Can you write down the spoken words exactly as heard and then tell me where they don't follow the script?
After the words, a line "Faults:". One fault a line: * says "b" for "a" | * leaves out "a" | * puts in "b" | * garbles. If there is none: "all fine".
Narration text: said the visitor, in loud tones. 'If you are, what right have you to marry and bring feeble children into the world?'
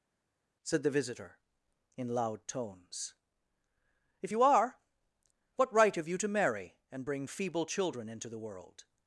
said the visitor, in loud tones. 'If you are, what right have you to marry and bring feeble children into the world?'
Faults:
all fine